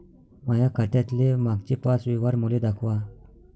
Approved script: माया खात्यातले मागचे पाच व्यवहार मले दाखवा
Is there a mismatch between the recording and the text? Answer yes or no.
no